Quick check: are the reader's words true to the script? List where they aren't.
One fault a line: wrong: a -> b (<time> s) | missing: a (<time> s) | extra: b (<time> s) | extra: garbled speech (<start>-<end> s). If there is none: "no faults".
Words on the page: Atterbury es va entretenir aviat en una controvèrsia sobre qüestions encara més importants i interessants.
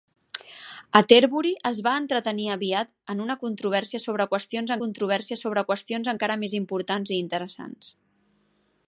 extra: controvèrsia sobre qüestions (4.8 s)